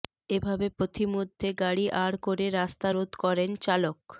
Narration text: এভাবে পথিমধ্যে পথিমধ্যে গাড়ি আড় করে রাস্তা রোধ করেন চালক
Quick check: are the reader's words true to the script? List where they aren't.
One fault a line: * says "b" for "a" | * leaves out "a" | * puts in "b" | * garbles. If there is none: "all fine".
* leaves out "পথিমধ্যে"